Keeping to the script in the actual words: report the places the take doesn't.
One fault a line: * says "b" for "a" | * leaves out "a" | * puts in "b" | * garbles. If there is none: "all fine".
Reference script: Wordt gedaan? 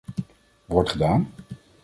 all fine